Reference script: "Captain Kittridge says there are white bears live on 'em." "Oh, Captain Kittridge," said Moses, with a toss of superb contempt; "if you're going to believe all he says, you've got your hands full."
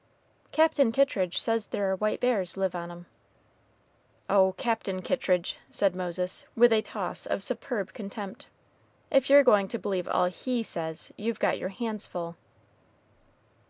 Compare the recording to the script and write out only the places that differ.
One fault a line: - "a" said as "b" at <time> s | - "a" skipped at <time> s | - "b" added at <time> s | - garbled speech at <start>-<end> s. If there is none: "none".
none